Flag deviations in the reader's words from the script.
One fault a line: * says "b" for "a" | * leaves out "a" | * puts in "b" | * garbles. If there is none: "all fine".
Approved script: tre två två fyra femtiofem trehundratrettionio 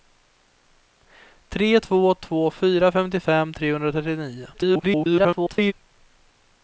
* garbles